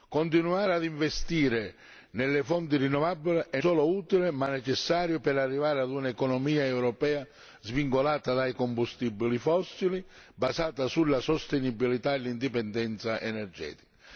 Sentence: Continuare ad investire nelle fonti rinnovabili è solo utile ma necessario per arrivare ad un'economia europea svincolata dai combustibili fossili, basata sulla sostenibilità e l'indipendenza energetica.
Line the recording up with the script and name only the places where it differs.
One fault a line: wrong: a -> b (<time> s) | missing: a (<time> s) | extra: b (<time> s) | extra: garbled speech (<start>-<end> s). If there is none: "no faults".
no faults